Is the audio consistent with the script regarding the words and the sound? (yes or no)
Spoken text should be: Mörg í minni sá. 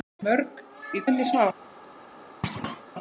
no